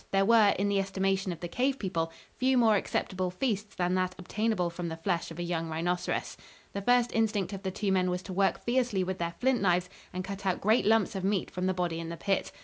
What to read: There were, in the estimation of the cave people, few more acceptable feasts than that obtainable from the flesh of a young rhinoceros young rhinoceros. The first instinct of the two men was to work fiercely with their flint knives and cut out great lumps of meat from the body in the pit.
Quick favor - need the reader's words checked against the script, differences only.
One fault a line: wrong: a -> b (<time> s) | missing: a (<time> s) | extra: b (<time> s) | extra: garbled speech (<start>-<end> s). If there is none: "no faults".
missing: young rhinoceros (6.4 s)